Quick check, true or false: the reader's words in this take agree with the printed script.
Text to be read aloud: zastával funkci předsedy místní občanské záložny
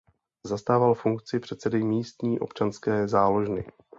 true